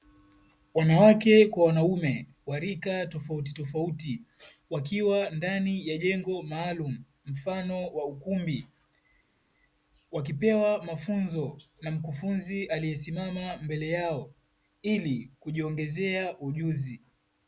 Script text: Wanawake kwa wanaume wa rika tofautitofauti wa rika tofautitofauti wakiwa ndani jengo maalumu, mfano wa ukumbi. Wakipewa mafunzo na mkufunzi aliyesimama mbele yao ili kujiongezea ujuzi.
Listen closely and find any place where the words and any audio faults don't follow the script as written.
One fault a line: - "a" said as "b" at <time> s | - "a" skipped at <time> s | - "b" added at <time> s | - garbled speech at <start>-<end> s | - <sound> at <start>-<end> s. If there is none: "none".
- "wa rika tofautitofauti" skipped at 4.2 s
- "ya" added at 5.9 s